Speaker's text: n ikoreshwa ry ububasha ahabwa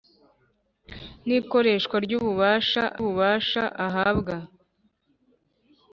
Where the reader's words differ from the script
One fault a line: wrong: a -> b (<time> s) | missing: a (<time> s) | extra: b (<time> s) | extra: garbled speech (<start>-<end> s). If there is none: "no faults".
extra: ububasha (3.0 s)